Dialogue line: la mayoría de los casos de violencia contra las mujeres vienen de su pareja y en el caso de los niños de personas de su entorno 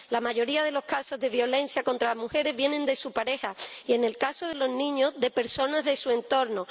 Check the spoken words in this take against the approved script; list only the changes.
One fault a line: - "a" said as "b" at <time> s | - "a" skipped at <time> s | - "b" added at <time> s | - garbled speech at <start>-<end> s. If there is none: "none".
none